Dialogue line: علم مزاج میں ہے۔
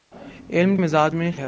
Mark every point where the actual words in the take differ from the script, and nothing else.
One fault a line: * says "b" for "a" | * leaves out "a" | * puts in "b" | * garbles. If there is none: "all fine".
all fine